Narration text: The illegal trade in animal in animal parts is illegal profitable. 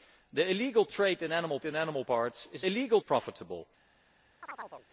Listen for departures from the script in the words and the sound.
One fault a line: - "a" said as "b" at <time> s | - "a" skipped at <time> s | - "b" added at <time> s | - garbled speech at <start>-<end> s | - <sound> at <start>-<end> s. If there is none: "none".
- chirp at 4.4-4.9 s